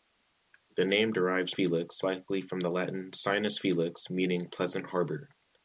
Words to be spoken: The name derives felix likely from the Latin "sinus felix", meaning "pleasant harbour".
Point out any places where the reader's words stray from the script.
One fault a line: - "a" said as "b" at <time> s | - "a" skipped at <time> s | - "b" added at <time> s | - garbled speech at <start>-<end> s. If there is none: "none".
none